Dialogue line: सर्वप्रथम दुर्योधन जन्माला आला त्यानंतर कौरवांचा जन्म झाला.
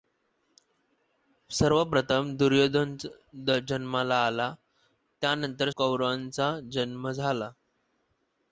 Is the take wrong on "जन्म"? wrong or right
right